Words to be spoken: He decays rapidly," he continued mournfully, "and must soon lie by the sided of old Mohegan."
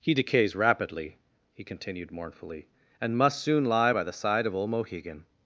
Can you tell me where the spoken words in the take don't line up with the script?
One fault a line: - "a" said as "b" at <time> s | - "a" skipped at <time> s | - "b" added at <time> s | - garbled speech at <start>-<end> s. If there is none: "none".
- "sided" said as "side" at 4.1 s